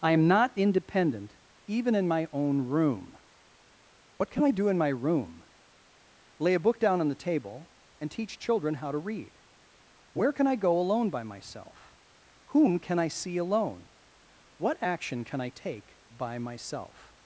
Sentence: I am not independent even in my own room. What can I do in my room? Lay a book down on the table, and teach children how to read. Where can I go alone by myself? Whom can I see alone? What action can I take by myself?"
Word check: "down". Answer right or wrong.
right